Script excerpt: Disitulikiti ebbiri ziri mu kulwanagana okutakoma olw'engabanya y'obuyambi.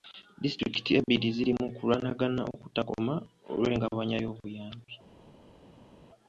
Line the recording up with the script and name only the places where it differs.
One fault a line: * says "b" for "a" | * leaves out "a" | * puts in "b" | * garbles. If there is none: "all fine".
all fine